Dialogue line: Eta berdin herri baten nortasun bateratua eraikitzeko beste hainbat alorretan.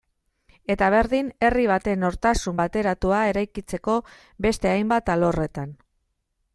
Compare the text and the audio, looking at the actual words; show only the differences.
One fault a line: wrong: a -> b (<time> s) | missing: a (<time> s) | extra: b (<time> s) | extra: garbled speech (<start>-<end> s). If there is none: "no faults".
no faults